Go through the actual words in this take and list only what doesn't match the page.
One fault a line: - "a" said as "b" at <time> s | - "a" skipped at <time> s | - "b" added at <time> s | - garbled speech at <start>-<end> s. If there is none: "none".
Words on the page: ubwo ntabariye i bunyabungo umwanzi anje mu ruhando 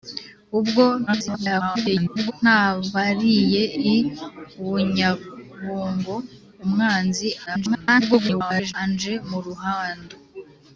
- garbled speech at 1.1-2.3 s
- garbled speech at 7.5-8.7 s